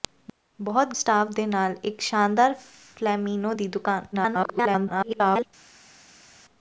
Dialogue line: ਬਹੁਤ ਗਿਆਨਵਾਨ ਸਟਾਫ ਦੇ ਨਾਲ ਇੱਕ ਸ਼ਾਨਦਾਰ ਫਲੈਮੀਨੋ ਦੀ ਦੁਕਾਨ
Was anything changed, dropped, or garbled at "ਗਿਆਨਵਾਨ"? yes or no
yes